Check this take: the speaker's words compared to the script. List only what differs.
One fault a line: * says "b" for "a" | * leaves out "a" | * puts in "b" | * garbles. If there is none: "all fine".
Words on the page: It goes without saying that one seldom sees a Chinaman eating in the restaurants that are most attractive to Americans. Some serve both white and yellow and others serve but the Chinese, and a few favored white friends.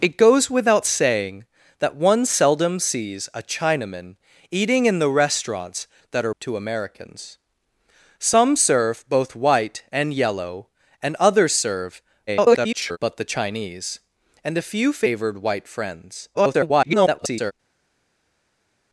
* leaves out "most attractive"
* garbles
* garbles